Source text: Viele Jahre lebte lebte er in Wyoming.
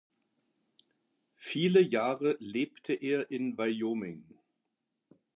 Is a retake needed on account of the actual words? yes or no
yes